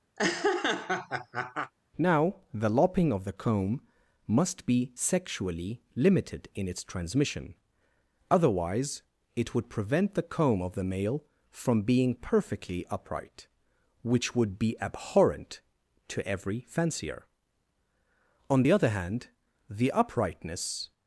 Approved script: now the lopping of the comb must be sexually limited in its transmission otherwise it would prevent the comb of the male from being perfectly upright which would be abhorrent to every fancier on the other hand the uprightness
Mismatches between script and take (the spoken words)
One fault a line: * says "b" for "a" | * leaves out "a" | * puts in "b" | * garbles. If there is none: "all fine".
all fine